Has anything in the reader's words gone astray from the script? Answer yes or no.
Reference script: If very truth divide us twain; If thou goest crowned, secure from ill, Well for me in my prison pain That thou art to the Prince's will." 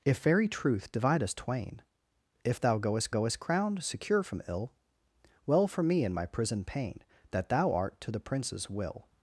yes